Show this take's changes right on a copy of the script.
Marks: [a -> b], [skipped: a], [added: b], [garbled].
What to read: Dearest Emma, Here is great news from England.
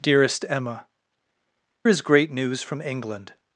Dearest Emma, [skipped: Here] is great news from England.